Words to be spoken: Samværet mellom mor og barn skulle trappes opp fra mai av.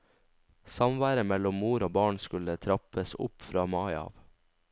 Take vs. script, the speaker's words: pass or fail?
pass